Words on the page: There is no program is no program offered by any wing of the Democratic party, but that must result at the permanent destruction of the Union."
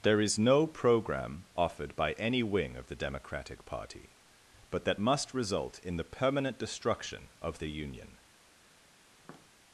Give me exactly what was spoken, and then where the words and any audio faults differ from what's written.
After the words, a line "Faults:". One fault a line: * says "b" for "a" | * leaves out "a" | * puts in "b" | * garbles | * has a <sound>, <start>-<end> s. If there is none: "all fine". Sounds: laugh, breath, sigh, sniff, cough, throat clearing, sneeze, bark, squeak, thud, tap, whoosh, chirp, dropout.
There is no program offered by any wing of the Democratic party, but that must result in the permanent destruction of the Union."
Faults:
* leaves out "is no program"
* says "in" for "at"
* has a tap, 9.2-9.5 s